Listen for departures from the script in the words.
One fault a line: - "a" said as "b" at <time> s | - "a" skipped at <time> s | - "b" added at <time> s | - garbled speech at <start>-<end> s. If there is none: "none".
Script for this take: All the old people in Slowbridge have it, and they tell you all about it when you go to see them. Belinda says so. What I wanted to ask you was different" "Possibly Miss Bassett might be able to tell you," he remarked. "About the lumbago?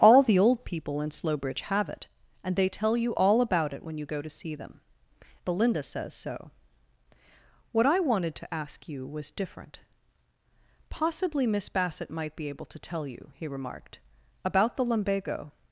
none